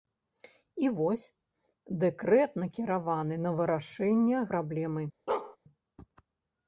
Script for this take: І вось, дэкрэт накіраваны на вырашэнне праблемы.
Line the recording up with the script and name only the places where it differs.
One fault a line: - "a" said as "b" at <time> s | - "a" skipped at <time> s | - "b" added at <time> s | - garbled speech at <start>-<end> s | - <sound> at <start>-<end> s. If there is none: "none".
- bark at 5.3-5.6 s